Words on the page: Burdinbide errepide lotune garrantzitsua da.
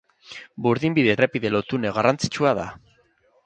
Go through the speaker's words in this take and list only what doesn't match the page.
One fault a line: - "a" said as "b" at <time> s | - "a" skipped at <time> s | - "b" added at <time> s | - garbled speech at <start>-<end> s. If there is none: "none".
none